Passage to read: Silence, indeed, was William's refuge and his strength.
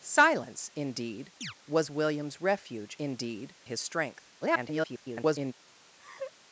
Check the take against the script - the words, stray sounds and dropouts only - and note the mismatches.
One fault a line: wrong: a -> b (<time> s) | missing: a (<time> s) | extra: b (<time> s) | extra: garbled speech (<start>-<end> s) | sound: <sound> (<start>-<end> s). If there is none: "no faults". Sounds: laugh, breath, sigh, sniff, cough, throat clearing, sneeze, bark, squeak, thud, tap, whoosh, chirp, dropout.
sound: chirp (1.4-1.5 s)
wrong: and -> indeed (3.0 s)
extra: garbled speech (4.4-5.5 s)
sound: laugh (6.0-6.3 s)